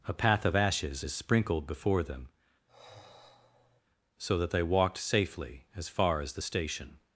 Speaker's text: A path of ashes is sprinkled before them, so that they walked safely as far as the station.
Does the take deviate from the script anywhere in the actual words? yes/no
no